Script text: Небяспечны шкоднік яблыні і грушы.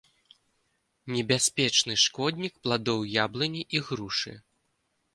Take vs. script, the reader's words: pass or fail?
fail